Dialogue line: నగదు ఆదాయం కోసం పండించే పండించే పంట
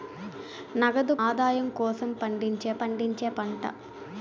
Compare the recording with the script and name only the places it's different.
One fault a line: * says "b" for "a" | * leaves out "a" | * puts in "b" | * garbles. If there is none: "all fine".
all fine